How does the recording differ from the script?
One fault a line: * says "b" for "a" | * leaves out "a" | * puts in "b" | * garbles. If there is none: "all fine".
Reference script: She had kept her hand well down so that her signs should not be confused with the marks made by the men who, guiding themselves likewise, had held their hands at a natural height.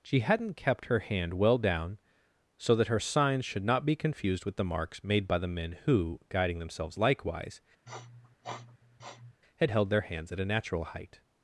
* says "hadn't" for "had"